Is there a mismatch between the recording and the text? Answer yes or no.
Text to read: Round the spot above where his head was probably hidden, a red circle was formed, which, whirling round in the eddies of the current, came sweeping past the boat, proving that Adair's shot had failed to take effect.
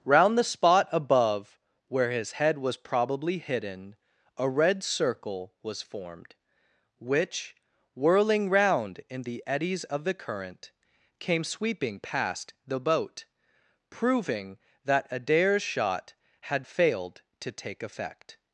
no